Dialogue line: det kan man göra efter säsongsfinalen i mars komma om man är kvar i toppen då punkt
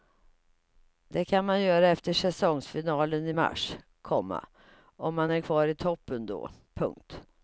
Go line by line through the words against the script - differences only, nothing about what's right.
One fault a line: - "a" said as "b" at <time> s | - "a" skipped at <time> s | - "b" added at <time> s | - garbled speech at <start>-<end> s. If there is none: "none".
none